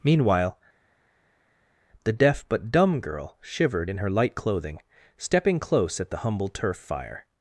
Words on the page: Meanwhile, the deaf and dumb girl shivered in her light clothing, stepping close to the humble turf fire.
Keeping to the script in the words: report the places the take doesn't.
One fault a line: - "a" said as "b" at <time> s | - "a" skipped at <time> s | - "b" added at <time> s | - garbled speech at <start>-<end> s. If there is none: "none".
- "and" said as "but" at 2.5 s
- "to" said as "at" at 6.0 s